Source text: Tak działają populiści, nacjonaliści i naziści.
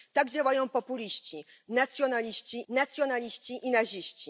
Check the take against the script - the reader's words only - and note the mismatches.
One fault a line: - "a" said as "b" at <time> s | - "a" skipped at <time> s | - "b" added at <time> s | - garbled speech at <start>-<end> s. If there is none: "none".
- "nacjonaliści" added at 2.7 s